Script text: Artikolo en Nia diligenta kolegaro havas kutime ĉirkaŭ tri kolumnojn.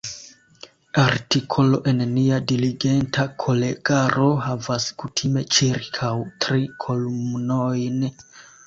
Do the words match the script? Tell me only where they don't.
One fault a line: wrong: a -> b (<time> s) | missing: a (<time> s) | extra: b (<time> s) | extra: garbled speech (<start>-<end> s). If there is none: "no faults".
no faults